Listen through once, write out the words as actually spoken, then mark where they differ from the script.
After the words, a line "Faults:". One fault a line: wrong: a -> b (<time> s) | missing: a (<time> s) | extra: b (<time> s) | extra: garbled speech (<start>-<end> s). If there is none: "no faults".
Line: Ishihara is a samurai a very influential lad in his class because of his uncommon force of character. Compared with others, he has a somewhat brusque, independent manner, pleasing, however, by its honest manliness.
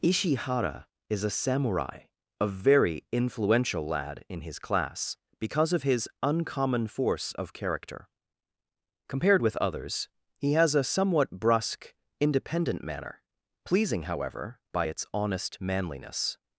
Ishihara is a samurai a very influential lad in his class because of his uncommon force of character. Compared with others, he has a somewhat brusque, independent manner, pleasing, however, by its honest manliness.
Faults:
no faults